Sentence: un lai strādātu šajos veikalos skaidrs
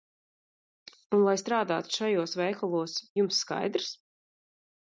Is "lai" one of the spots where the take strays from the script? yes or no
no